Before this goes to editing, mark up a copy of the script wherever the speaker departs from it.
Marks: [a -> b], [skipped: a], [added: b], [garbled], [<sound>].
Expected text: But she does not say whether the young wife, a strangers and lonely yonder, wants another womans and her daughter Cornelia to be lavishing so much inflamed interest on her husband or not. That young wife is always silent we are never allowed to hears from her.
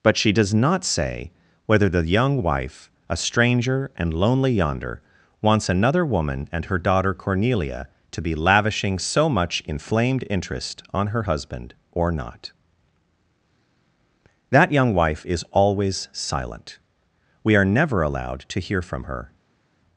But she does not say whether the young wife, a [strangers -> stranger] and lonely yonder, wants another [womans -> woman] and her daughter Cornelia to be lavishing so much inflamed interest on her husband or not. That young wife is always silent we are never allowed to [hears -> hear] from her.